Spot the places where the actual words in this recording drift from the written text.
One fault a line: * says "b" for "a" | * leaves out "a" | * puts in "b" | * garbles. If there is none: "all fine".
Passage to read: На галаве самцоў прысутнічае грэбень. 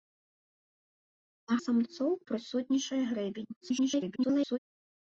* leaves out "галаве"
* garbles